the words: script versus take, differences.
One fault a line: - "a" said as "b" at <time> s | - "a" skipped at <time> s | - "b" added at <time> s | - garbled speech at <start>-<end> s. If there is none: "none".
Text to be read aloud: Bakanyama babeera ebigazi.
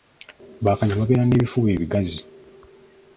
- "n'ebifuba" added at 1.2 s